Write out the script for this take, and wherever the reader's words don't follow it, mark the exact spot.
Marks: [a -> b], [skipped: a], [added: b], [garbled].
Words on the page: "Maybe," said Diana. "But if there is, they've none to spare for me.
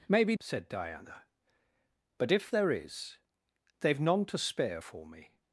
"Maybe," said Diana. "But if there is, they've none to spare for me.